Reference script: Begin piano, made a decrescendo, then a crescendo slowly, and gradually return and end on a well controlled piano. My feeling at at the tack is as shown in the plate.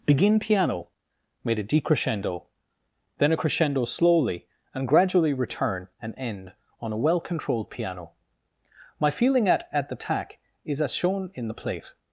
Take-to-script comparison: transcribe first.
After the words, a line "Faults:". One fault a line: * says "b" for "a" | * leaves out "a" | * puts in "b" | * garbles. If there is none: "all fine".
Begin piano, made a decrescendo, then a crescendo slowly, and gradually return and end on a well controlled piano. My feeling at at the tack is as shown in the plate.
Faults:
all fine